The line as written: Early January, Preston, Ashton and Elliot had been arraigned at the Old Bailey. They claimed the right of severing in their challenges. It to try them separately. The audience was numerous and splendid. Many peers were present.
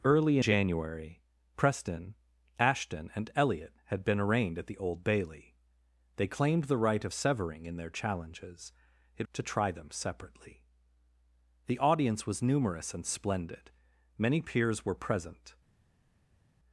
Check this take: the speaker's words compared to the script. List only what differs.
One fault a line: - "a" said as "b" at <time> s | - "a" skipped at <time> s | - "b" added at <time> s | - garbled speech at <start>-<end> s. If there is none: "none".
none